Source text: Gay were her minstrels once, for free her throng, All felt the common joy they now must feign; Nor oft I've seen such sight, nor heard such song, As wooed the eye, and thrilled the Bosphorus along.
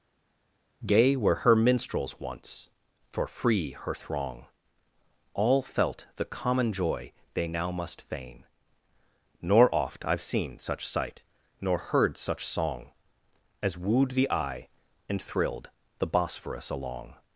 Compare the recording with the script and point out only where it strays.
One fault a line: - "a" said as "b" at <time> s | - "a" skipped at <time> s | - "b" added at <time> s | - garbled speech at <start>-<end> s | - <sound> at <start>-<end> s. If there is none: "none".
none